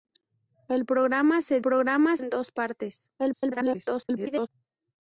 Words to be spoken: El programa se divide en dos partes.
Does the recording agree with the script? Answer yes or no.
no